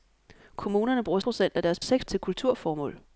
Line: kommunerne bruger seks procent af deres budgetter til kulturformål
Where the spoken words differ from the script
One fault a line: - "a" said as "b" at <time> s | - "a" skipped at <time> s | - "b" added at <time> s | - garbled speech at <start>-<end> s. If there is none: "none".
- "seks" skipped at 1.2 s
- "budgetter" said as "seks" at 1.8 s